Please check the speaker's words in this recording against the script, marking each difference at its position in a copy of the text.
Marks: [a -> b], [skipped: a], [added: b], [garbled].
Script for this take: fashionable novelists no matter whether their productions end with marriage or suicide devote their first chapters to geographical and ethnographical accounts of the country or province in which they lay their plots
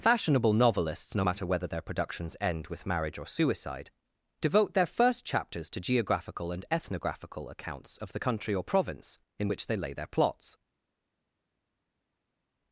fashionable novelists no matter whether their productions end with marriage or suicide devote their first chapters to geographical and ethnographical accounts of the country or province in which they lay their plots